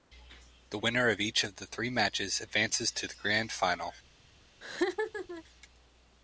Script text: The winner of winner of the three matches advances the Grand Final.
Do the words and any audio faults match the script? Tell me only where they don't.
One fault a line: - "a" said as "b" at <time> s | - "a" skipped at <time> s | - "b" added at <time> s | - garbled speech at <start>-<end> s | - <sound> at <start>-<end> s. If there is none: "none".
- "winner" said as "each" at 1.2 s
- "to" added at 2.9 s
- laugh at 4.6-5.4 s